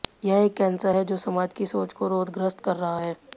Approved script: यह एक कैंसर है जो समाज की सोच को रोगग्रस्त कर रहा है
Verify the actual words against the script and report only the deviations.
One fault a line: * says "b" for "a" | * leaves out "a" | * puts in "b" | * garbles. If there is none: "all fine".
all fine